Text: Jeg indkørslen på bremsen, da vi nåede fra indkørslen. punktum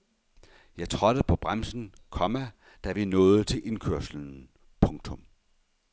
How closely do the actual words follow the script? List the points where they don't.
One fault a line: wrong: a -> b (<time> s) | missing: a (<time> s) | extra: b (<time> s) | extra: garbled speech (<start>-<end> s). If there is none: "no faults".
wrong: indkørslen -> trådte (0.9 s)
extra: komma (2.1 s)
wrong: fra -> til (3.4 s)